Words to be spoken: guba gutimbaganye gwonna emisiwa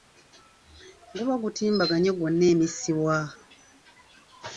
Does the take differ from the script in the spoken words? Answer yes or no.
no